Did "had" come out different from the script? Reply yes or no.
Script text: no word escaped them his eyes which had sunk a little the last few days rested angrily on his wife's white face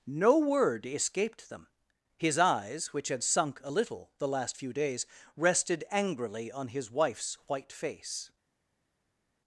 no